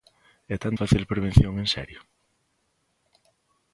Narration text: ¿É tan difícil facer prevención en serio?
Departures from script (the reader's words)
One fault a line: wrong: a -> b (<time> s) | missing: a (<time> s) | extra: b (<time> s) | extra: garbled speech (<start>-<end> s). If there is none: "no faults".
missing: difícil (0.7 s)